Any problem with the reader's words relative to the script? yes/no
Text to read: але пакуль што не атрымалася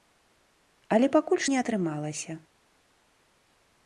yes